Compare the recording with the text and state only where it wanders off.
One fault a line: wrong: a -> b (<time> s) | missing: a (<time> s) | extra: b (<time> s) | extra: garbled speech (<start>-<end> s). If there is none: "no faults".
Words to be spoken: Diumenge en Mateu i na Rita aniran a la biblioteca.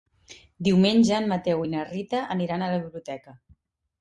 no faults